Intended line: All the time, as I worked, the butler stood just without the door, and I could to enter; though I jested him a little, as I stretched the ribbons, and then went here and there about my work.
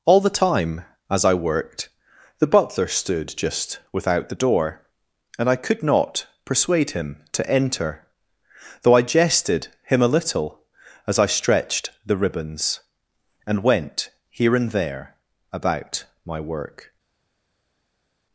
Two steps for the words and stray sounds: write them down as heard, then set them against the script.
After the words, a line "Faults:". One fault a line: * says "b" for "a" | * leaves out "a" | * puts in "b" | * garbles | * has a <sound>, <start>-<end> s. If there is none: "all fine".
All the time, as I worked, the butler stood just without the door, and I could not persuade him to enter; though I jested him a little, as I stretched the ribbons, and went here and there about my work.
Faults:
* puts in "not persuade him"
* leaves out "then"